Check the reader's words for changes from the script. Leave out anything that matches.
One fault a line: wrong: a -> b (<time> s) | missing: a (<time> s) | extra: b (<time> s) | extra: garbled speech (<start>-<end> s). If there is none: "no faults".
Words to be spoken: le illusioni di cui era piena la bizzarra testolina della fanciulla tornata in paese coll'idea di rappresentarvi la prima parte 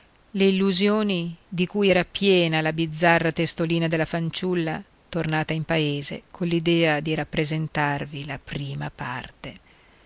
no faults